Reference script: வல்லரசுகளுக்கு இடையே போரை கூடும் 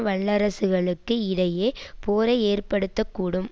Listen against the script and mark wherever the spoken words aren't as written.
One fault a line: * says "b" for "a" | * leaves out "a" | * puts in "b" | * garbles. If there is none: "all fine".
* puts in "ஏற்படுத்த"